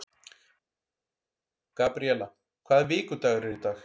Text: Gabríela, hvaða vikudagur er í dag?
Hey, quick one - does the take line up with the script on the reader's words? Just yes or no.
yes